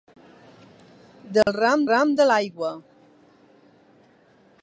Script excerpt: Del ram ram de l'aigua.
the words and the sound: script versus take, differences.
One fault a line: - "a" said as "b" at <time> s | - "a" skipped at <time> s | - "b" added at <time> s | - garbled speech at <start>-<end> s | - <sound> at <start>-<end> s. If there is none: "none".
- dropout at 1.4-1.5 s